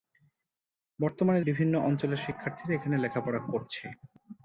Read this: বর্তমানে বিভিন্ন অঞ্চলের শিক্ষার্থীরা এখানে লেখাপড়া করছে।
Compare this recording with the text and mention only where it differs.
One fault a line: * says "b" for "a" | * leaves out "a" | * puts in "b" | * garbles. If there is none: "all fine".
all fine